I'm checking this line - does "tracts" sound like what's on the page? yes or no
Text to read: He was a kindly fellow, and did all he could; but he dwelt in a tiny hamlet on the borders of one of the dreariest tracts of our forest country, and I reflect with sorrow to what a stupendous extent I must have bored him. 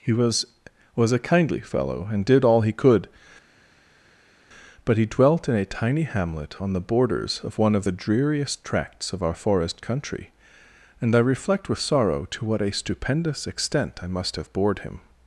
yes